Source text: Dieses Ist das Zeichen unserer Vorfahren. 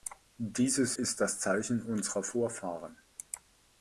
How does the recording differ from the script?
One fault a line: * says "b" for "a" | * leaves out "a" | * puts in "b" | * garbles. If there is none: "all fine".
all fine